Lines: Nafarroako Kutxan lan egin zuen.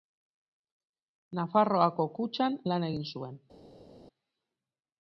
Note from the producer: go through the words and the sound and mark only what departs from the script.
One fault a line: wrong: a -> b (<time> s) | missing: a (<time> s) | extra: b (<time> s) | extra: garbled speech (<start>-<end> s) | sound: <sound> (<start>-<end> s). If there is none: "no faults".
no faults